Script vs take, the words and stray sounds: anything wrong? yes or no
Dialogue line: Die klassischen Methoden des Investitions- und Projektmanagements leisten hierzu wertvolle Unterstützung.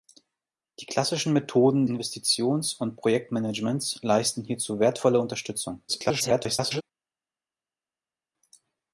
yes